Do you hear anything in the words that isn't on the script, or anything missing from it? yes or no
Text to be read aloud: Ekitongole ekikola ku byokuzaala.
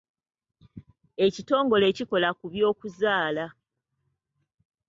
no